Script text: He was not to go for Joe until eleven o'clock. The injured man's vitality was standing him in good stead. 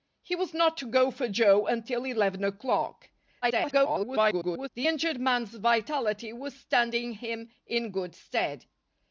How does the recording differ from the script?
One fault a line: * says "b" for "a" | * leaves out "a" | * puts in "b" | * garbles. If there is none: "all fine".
* garbles